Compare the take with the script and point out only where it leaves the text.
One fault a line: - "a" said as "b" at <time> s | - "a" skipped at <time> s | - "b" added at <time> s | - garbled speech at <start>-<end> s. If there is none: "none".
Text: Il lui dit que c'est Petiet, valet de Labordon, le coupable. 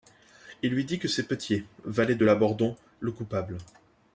none